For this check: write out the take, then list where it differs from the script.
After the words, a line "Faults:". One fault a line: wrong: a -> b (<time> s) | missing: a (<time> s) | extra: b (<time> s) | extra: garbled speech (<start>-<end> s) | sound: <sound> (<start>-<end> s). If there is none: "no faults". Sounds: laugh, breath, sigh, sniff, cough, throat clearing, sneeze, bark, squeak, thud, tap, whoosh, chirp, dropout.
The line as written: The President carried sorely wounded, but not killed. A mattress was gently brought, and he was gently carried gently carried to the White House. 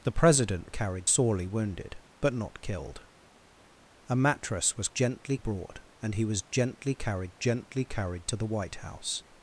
The President carried sorely wounded, but not killed. A mattress was gently brought, and he was gently carried gently carried to the White House.
Faults:
no faults